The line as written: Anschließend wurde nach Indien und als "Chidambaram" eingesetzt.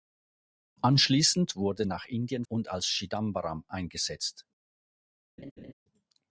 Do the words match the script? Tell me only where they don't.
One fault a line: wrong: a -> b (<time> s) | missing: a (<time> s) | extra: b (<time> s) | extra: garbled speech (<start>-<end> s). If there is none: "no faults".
no faults